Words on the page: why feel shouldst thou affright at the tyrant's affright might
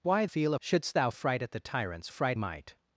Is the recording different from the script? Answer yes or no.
no